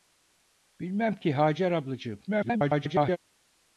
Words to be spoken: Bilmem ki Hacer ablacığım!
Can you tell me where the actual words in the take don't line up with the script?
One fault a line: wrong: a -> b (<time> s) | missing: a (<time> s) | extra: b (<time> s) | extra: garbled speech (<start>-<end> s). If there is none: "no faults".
extra: garbled speech (2.3-3.2 s)